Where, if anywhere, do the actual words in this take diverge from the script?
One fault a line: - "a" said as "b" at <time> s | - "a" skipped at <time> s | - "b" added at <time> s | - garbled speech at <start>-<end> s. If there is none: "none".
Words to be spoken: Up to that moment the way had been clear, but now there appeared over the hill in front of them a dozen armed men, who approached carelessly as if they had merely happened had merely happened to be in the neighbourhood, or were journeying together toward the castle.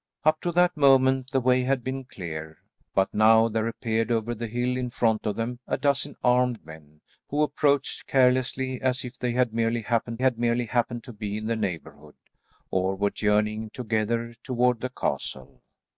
none